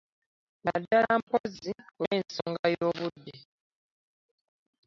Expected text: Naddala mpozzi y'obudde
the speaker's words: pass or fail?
fail